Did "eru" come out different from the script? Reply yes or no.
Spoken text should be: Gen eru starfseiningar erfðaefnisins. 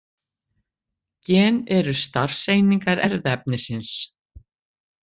no